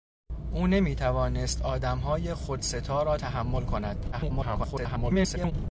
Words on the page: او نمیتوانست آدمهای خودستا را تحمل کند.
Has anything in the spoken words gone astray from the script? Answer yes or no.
yes